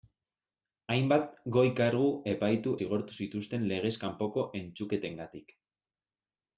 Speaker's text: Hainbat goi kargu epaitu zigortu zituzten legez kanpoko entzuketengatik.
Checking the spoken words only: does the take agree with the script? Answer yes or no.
yes